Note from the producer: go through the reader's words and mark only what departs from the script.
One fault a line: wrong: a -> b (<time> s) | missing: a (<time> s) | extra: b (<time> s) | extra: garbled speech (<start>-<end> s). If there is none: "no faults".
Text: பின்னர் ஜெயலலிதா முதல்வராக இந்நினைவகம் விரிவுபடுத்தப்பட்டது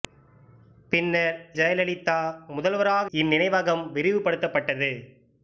no faults